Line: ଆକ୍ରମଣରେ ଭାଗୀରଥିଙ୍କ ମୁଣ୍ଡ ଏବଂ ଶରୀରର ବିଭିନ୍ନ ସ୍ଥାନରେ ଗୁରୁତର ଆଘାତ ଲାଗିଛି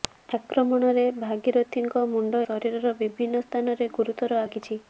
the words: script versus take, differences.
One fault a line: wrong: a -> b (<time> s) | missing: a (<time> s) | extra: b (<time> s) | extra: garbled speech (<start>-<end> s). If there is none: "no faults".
missing: ଏବଂ (2.4 s)
missing: ଆଘାତ (4.4 s)